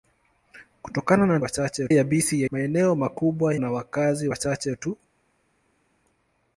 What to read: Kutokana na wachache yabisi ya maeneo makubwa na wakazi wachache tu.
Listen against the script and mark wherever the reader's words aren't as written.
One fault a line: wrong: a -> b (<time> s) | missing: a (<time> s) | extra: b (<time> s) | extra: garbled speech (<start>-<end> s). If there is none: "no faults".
no faults